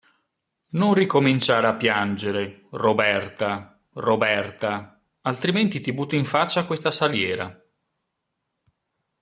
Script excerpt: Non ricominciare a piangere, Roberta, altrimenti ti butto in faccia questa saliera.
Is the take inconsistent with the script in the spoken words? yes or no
yes